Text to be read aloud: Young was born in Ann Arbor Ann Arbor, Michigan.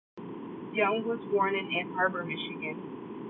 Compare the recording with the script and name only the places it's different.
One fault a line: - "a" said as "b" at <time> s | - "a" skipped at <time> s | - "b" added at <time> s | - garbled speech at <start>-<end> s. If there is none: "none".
- "Ann Arbor" skipped at 2.2 s